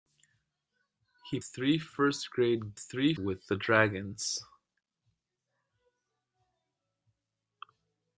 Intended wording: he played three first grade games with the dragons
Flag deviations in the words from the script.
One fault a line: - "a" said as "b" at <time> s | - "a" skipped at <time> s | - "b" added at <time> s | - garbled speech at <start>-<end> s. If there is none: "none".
- "played" skipped at 1.4 s
- "games" said as "three" at 2.8 s